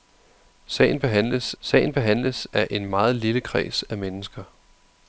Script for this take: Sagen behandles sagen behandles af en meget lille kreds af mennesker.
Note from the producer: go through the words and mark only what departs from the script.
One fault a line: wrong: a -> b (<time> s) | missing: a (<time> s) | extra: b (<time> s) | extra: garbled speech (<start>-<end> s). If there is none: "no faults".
no faults